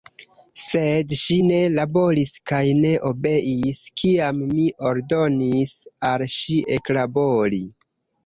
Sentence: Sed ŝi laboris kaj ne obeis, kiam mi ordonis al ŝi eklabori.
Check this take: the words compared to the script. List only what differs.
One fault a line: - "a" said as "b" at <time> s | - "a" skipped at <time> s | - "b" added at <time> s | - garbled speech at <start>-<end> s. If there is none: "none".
- "ne" added at 1.5 s